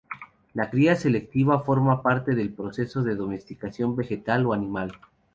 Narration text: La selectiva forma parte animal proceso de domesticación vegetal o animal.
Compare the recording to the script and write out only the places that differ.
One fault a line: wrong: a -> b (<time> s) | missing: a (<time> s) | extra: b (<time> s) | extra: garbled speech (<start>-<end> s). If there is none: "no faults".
extra: cría (0.7 s)
wrong: animal -> del (2.3 s)